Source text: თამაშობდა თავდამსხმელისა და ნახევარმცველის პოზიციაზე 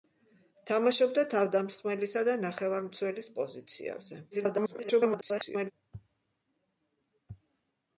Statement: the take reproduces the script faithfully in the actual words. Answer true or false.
false